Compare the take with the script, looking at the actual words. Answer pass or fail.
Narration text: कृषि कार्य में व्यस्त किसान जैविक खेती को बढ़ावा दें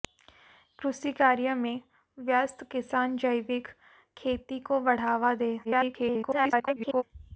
fail